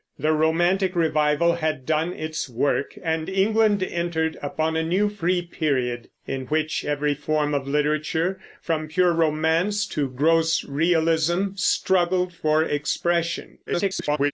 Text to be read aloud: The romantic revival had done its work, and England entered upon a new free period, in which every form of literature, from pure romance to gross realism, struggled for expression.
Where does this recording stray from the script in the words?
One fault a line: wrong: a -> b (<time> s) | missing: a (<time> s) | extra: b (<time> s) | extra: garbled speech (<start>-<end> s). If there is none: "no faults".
extra: garbled speech (13.7-14.3 s)